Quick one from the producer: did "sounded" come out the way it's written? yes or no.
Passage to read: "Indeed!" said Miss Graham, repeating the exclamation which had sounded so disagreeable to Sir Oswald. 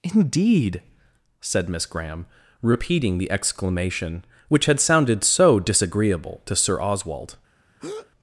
yes